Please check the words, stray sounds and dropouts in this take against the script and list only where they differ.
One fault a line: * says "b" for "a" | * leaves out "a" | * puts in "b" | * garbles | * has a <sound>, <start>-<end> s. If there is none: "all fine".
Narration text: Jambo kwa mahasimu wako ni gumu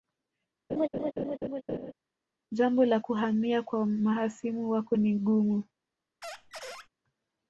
* has a laugh, 0.7-1.9 s
* puts in "la kuhamia"
* has a squeak, 6.2-6.9 s